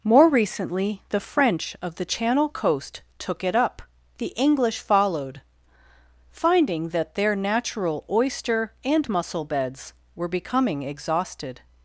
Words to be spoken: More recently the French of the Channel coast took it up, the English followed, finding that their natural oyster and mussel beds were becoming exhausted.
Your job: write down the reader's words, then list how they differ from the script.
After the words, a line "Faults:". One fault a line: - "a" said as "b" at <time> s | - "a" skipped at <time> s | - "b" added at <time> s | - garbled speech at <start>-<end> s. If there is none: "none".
More recently the French of the Channel coast took it up, the English followed, finding that their natural oyster and mussel beds were becoming exhausted.
Faults:
none